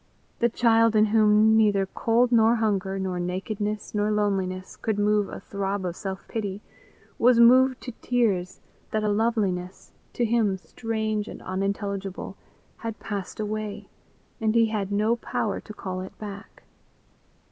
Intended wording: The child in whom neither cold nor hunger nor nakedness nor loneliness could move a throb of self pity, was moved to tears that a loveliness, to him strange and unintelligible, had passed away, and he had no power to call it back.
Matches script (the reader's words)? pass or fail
pass